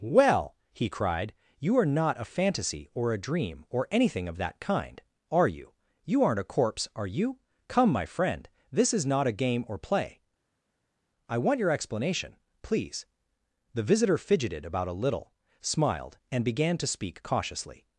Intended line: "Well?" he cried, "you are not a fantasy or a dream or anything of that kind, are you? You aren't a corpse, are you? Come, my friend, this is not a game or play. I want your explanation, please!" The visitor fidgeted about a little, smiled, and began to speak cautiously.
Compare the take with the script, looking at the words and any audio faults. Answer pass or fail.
pass